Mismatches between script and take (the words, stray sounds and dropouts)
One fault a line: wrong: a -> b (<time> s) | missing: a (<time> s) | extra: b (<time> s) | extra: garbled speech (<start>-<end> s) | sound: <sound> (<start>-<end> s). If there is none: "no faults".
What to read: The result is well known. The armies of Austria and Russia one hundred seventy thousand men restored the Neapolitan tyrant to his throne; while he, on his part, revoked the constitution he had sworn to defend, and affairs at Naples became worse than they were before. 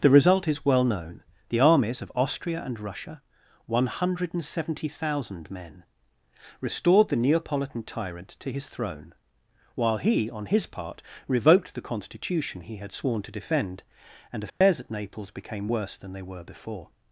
sound: dropout (14.5-14.6 s)